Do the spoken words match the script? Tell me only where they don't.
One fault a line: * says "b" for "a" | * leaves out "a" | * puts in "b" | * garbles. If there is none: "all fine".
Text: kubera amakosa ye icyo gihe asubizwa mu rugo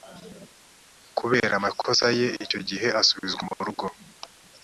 all fine